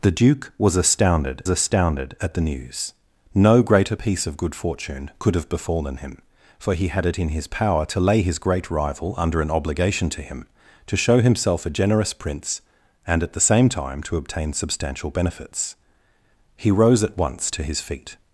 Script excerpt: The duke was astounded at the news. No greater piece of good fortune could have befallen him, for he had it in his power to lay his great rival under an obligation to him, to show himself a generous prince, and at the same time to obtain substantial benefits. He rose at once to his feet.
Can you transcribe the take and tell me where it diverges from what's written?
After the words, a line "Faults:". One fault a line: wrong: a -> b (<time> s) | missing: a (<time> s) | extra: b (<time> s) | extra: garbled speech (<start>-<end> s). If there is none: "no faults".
The duke was astounded astounded at the news. No greater piece of good fortune could have befallen him, for he had it in his power to lay his great rival under an obligation to him, to show himself a generous prince, and at the same time to obtain substantial benefits. He rose at once to his feet.
Faults:
extra: astounded (1.5 s)